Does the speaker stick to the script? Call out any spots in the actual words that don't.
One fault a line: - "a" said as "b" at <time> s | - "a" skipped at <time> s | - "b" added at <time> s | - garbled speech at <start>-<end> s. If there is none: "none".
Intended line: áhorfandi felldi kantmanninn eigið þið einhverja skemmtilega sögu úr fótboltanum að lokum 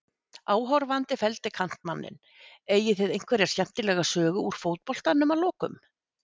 none